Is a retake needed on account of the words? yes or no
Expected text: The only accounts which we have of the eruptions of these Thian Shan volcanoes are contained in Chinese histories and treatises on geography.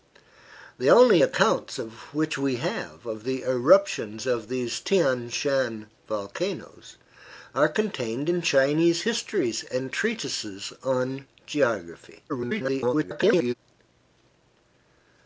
yes